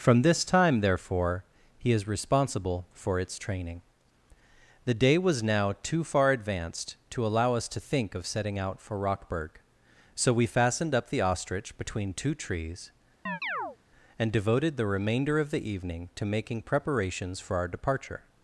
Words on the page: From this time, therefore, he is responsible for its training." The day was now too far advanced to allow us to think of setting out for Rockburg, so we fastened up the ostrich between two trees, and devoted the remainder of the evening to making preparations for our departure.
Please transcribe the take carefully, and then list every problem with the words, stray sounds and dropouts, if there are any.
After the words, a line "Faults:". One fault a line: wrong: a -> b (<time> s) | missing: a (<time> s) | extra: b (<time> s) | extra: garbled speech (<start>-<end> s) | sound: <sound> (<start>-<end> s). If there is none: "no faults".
From this time, therefore, he is responsible for its training." The day was now too far advanced to allow us to think of setting out for Rockburg, so we fastened up the ostrich between two trees, and devoted the remainder of the evening to making preparations for our departure.
Faults:
sound: chirp (13.3-13.8 s)